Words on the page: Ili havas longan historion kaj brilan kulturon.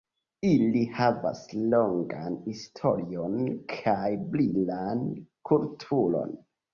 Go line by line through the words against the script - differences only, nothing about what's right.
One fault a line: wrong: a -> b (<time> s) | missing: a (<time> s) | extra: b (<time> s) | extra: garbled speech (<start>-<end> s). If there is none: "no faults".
no faults